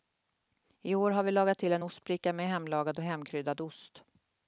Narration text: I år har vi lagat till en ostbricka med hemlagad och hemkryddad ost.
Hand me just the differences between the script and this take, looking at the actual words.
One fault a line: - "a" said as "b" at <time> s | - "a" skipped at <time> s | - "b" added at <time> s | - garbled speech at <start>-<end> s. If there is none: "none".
none